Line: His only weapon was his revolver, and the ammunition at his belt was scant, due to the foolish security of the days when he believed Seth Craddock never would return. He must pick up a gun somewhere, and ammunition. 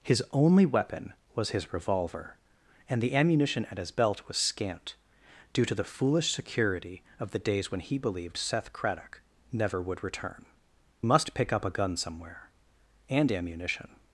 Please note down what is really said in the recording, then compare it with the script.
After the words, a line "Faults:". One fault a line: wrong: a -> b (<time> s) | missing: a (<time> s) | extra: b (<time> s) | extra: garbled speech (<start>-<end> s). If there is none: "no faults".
His only weapon was his revolver, and the ammunition at his belt was scant, due to the foolish security of the days when he believed Seth Craddock never would return. Must pick up a gun somewhere, and ammunition.
Faults:
missing: He (10.5 s)